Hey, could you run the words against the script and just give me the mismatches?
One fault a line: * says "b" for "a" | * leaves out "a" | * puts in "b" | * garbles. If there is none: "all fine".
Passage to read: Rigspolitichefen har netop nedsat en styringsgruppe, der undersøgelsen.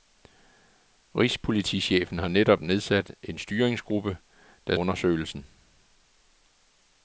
all fine